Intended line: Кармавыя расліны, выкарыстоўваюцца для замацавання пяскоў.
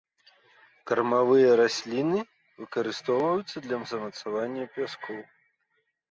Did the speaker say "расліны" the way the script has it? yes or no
yes